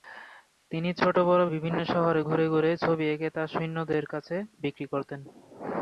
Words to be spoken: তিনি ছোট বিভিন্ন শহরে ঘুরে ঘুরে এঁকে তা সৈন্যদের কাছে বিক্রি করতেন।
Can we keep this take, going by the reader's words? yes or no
no